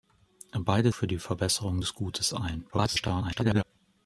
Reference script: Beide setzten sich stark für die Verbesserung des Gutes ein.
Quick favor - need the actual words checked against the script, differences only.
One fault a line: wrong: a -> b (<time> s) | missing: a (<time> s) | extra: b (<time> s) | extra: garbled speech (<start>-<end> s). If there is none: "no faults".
missing: setzten sich stark (0.9 s)
extra: garbled speech (2.7-3.6 s)